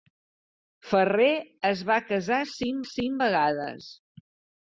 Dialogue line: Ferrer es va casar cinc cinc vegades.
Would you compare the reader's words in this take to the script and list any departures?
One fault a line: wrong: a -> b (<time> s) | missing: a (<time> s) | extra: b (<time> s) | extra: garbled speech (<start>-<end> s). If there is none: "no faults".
no faults